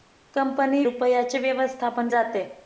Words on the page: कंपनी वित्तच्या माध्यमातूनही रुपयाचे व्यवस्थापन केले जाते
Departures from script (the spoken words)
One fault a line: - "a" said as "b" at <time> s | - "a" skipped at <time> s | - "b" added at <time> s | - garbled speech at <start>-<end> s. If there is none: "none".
- "वित्तच्या माध्यमातूनही" skipped at 0.8 s
- "केले" skipped at 2.1 s